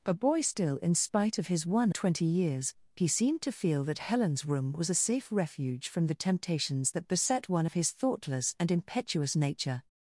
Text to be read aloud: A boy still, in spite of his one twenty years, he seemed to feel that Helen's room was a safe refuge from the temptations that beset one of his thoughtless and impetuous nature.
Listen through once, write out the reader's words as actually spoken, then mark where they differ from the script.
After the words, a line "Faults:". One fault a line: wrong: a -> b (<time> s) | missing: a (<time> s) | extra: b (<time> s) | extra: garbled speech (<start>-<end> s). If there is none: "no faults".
A boy still, in spite of his one twenty years, he seemed to feel that Helen's room was a safe refuge from the temptations that beset one of his thoughtless and impetuous nature.
Faults:
no faults